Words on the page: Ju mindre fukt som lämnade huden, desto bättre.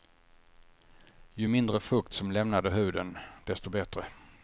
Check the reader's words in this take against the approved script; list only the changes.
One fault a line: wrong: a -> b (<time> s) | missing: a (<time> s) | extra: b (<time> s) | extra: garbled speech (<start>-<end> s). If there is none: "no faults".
no faults